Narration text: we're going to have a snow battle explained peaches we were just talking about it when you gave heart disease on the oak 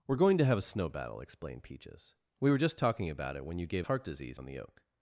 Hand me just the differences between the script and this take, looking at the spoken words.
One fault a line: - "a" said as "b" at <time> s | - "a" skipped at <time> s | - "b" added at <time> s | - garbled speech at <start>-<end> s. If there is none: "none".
none